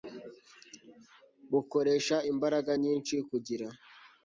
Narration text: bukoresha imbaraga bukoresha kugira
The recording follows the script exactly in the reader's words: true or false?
false